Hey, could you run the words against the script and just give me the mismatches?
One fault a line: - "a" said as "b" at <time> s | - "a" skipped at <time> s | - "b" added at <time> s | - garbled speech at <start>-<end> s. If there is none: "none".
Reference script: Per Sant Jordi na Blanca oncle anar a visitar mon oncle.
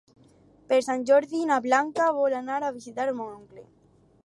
- "oncle" said as "vol" at 2.2 s